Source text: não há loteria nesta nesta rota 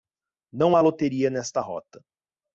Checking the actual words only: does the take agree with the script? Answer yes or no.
no